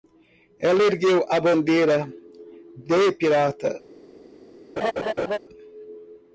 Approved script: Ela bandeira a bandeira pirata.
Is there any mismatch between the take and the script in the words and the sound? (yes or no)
yes